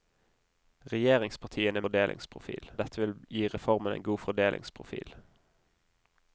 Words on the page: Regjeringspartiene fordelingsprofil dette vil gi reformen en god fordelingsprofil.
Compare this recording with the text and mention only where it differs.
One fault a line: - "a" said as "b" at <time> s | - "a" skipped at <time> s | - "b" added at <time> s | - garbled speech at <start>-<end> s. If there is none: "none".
none